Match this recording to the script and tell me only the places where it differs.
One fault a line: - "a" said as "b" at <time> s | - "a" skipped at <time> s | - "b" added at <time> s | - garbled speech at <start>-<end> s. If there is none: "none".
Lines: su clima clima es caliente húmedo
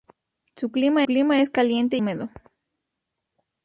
none